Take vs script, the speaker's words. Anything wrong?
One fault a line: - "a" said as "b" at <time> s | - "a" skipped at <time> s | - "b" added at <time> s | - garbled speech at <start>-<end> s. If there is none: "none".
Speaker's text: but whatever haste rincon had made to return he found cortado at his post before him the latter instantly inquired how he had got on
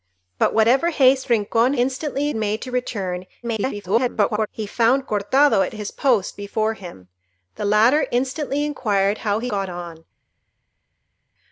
- "had" said as "instantly" at 1.7 s
- garbled speech at 3.4-4.5 s
- "had" skipped at 9.5 s